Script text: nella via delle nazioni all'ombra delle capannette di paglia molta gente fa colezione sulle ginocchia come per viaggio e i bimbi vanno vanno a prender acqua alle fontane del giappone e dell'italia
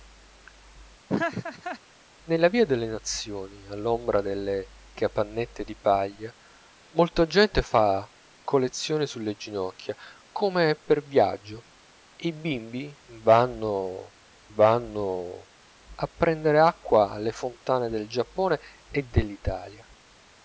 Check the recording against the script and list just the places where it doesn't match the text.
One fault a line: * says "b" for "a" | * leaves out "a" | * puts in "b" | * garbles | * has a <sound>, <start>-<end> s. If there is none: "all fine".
* has a laugh, 1.1-1.8 s